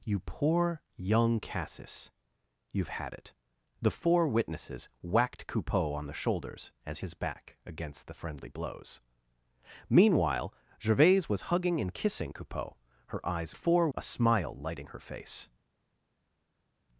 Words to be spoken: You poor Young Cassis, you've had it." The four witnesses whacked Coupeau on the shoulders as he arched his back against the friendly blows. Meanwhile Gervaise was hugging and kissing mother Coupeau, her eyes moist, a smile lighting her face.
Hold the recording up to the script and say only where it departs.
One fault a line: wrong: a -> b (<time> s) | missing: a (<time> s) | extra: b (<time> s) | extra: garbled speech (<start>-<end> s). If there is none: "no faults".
missing: he arched (7.0 s)
missing: mother (12.3 s)
wrong: moist -> four (13.5 s)